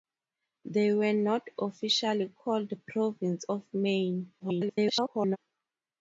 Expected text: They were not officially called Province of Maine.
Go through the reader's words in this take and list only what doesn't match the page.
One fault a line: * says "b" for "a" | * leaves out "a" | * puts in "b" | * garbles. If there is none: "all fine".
* garbles